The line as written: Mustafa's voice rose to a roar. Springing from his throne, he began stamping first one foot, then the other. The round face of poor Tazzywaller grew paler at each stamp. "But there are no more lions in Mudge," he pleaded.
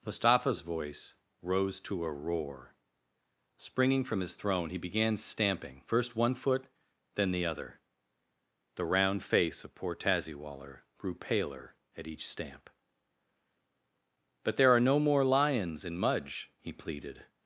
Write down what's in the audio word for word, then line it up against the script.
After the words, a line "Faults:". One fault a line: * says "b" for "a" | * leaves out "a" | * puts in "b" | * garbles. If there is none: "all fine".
Mustafa's voice rose to a roar. Springing from his throne, he began stamping first one foot, then the other. The round face of poor Tazzywaller grew paler at each stamp. "But there are no more lions in Mudge," he pleaded.
Faults:
all fine